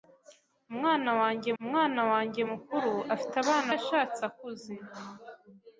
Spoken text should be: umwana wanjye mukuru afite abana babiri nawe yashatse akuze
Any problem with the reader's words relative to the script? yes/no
yes